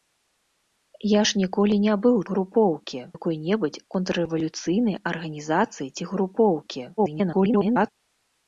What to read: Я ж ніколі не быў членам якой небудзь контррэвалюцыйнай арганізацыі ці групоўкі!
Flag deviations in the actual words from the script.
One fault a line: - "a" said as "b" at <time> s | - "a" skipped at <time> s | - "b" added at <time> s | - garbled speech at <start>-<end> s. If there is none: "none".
- "членам" said as "групоўкі" at 2.3 s
- garbled speech at 7.0-7.9 s